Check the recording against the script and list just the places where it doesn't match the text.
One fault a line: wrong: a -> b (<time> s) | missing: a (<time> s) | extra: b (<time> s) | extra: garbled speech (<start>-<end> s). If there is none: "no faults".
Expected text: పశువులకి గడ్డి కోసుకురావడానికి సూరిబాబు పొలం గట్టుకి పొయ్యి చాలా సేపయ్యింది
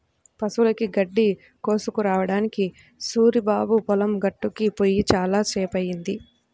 no faults